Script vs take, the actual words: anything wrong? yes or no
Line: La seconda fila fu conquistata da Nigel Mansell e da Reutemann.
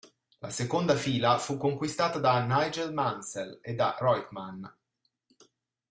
no